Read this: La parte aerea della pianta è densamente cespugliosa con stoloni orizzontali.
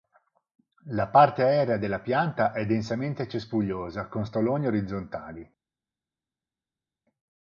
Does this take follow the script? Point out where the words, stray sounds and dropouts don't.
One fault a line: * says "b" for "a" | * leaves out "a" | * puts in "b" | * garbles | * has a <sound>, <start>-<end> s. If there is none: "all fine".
all fine